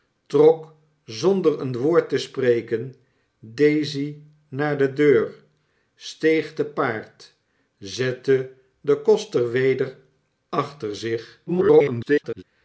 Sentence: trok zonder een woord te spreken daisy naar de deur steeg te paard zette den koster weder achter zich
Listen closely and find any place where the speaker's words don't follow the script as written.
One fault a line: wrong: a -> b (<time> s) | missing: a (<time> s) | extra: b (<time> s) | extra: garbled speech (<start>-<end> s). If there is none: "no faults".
extra: garbled speech (11.5-12.4 s)